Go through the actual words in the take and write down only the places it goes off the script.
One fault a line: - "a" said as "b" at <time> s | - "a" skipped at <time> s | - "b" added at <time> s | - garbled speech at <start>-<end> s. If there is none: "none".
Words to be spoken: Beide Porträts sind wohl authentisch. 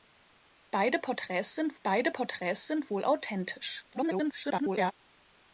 - "beide Porträts sind" added at 1.8 s
- garbled speech at 3.9-4.9 s